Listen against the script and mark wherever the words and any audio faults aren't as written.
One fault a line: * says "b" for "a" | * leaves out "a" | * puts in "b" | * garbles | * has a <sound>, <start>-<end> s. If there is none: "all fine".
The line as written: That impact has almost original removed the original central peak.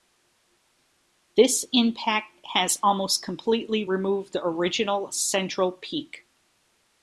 * says "This" for "That"
* says "completely" for "original"